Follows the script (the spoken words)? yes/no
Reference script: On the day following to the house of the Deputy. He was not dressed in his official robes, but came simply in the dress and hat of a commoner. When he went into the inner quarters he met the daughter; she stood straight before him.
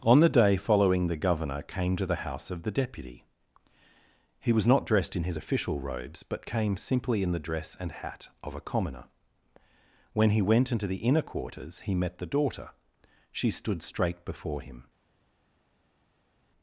no